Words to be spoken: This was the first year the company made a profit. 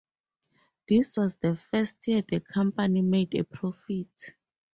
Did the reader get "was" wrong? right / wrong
right